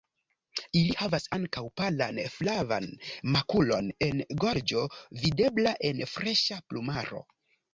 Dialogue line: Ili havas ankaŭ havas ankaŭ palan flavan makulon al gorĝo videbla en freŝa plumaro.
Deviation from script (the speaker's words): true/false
true